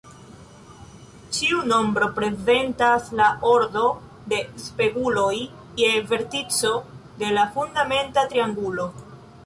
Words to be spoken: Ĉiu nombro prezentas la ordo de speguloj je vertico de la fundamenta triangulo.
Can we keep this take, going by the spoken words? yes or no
yes